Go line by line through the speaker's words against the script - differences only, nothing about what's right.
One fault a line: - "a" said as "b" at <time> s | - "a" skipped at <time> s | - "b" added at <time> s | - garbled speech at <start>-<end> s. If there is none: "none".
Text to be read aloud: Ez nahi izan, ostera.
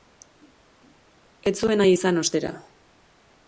- "zuen" added at 1.6 s